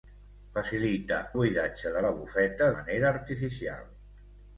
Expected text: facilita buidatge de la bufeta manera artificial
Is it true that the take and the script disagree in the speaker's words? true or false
false